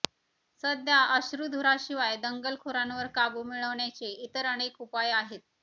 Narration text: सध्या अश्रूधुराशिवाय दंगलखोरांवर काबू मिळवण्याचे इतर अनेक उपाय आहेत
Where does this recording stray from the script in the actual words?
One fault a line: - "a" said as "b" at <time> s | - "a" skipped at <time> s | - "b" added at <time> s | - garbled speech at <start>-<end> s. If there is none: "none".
none